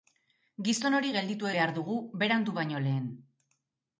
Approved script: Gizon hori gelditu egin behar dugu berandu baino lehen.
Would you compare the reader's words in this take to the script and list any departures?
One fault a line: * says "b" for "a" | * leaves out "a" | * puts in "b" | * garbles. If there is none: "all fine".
* leaves out "egin"